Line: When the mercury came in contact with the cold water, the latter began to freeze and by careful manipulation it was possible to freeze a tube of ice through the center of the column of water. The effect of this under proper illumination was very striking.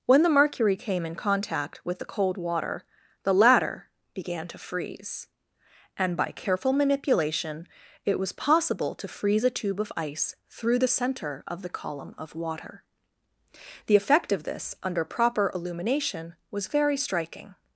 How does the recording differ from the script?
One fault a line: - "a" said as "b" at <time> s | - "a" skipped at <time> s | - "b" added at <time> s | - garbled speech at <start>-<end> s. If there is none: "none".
none